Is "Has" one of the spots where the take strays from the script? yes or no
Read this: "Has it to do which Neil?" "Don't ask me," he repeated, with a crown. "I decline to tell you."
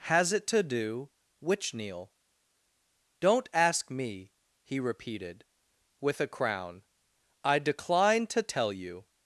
no